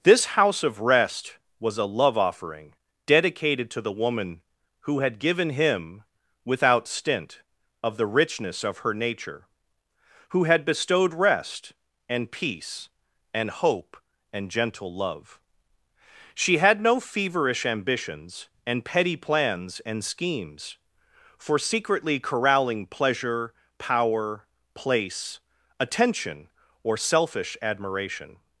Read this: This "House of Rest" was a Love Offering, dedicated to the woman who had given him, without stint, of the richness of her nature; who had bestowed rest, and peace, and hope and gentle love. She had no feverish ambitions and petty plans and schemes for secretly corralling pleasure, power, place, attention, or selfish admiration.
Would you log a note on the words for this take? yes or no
no